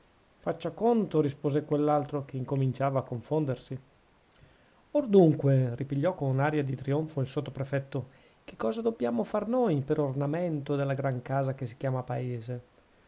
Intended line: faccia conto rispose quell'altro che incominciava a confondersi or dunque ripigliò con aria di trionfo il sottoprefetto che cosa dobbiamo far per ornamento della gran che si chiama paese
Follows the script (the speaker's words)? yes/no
no